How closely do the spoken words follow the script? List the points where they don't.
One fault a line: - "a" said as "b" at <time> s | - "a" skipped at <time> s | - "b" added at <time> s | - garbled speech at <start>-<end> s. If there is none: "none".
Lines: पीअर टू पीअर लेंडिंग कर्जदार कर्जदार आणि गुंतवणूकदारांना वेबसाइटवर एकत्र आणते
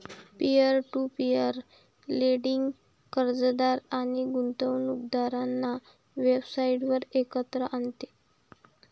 - "कर्जदार" skipped at 3.8 s